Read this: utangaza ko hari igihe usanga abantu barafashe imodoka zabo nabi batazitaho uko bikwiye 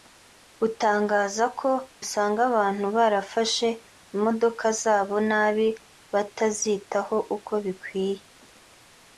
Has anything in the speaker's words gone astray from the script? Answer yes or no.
yes